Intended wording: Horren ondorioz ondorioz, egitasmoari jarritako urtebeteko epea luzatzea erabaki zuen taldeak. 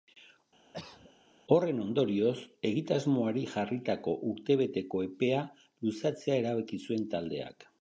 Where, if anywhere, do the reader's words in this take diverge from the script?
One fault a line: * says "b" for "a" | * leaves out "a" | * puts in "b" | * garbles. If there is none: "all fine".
* leaves out "ondorioz"